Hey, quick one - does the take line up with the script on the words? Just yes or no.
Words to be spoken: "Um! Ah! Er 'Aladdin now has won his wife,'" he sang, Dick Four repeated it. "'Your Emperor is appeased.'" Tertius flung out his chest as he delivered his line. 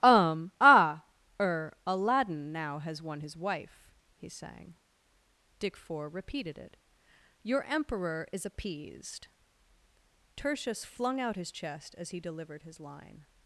yes